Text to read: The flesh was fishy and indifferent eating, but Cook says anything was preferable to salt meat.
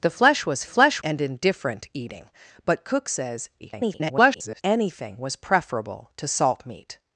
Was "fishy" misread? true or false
true